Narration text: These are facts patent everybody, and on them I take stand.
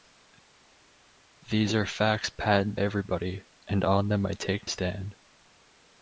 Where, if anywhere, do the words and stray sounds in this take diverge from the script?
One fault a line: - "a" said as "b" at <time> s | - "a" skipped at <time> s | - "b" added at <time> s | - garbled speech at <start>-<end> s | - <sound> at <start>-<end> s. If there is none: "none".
none